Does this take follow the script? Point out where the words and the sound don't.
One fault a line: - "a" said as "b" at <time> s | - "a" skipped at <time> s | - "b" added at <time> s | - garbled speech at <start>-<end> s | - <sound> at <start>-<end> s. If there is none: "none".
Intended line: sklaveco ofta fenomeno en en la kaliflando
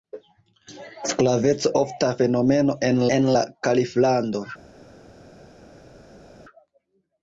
none